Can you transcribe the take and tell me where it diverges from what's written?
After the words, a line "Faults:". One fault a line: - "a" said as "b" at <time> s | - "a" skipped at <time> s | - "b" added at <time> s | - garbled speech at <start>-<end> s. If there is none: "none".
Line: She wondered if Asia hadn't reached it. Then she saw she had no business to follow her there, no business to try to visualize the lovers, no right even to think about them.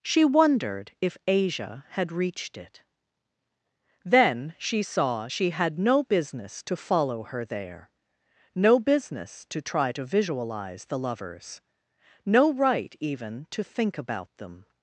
She wondered if Asia had reached it. Then she saw she had no business to follow her there, no business to try to visualize the lovers, no right even to think about them.
Faults:
- "hadn't" said as "had" at 1.9 s